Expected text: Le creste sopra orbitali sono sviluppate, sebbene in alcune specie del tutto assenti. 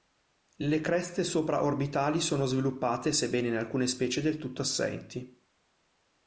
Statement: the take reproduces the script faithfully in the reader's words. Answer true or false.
true